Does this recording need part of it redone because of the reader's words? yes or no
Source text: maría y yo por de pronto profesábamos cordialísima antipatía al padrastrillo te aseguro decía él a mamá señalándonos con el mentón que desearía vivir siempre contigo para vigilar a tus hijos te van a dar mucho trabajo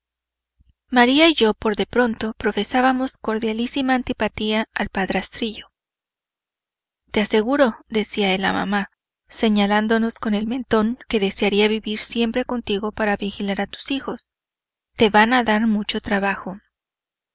no